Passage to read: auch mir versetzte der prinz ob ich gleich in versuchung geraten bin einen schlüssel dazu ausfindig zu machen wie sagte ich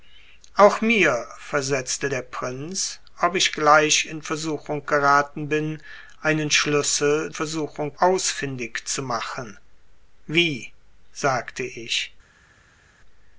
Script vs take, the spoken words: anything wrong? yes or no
yes